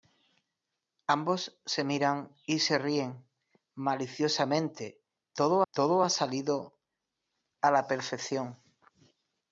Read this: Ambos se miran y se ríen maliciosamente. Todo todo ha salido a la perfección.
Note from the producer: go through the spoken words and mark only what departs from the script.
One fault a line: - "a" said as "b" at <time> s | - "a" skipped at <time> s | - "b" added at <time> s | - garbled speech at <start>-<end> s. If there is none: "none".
none